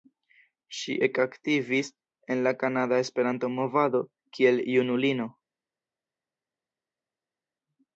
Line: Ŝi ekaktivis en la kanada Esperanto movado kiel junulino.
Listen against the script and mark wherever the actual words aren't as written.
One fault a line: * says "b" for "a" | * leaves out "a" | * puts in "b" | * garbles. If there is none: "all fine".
all fine